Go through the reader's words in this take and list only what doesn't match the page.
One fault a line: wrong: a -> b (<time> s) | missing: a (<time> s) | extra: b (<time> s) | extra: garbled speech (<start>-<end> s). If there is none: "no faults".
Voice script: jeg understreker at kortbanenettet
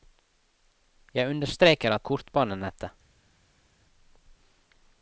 no faults